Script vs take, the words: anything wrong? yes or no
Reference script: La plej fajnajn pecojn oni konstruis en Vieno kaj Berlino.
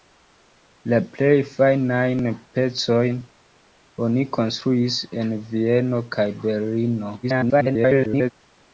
yes